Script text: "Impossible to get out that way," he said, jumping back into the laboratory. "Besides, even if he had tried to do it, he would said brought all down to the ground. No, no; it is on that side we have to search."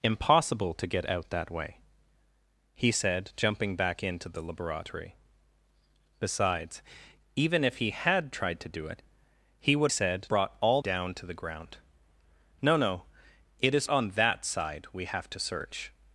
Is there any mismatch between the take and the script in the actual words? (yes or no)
no